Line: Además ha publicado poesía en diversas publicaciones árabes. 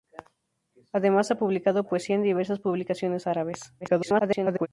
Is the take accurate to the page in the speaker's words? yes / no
no